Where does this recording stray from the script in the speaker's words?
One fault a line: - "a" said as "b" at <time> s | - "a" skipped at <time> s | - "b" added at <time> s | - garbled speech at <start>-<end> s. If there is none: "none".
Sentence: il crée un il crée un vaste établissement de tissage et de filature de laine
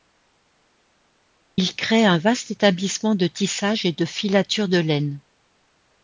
- "il crée un" skipped at 2.2 s